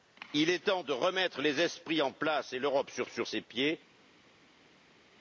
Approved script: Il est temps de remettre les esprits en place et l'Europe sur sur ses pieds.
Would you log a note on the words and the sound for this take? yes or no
no